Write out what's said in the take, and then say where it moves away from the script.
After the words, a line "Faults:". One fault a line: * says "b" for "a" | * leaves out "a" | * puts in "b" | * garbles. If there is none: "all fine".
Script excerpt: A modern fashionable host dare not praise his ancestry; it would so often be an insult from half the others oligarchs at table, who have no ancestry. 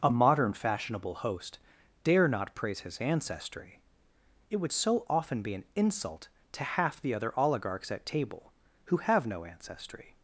A modern fashionable host dare not praise his ancestry; it would so often be an insult to half the other oligarchs at table, who have no ancestry.
Faults:
* says "to" for "from"
* says "other" for "others"